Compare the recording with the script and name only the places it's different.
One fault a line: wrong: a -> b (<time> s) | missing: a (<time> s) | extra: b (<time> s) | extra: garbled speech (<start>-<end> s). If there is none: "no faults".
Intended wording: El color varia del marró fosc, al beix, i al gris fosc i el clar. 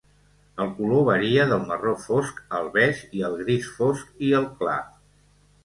no faults